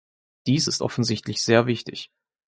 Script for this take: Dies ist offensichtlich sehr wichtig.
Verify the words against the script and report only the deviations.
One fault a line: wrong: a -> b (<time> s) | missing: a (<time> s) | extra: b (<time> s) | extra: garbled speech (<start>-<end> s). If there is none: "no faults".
no faults